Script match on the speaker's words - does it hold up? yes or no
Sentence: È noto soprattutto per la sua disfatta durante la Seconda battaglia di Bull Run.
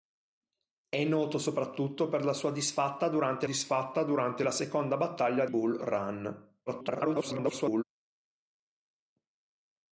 no